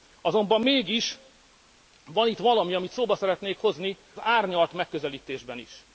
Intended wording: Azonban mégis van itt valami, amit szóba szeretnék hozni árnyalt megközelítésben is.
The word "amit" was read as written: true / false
true